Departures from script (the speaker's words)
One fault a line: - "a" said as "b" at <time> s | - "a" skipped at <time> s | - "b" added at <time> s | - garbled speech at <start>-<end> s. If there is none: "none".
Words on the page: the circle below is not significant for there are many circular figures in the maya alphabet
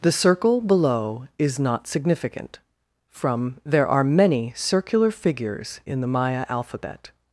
- "for" said as "from" at 3.1 s